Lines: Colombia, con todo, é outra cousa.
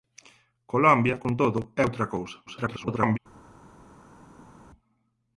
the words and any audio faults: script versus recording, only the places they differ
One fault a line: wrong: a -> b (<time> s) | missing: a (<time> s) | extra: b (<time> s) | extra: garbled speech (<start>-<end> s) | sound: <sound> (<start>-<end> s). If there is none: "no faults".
extra: garbled speech (2.5-3.2 s)